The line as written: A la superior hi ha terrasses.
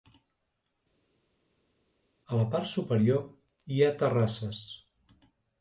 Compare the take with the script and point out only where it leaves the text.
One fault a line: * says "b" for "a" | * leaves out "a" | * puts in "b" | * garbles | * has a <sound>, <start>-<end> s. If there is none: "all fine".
* puts in "part"